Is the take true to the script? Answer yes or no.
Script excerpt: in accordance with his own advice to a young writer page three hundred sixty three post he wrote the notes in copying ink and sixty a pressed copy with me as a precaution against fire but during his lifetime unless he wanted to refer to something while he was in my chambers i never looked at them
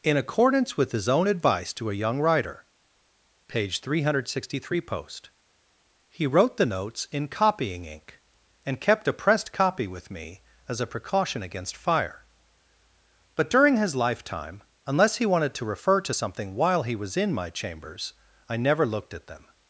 no